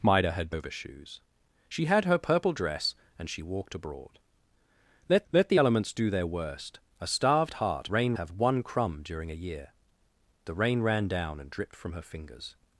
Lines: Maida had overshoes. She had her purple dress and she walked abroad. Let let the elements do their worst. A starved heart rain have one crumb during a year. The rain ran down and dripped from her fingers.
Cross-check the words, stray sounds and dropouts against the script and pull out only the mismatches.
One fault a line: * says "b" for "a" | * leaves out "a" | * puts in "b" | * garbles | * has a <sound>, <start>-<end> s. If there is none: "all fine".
all fine